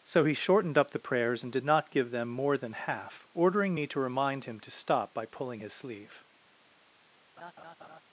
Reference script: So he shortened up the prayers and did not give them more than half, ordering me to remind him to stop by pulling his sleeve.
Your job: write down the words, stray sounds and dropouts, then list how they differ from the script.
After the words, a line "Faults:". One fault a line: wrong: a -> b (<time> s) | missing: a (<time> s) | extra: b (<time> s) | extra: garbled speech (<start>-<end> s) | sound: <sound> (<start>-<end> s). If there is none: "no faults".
So he shortened up the prayers and did not give them more than half, ordering me to remind him to stop by pulling his sleeve.
Faults:
sound: laugh (7.4-8.0 s)